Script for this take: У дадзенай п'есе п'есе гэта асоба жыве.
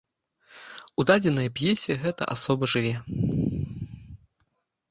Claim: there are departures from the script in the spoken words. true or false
true